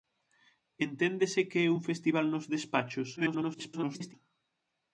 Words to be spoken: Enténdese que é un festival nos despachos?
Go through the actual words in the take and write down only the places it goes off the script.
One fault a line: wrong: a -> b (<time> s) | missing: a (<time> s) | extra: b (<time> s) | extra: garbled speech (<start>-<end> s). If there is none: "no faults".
extra: garbled speech (3.2-4.1 s)